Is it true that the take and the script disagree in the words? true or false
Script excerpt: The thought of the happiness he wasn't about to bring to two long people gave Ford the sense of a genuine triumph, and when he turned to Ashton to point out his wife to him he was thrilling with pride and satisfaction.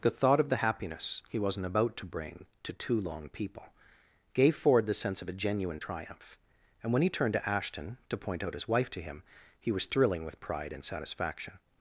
false